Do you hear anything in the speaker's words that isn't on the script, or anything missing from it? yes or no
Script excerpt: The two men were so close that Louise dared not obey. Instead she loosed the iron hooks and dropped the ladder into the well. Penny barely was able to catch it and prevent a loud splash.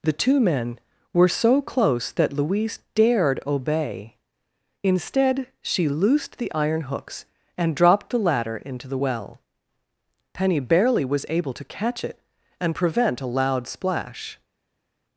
yes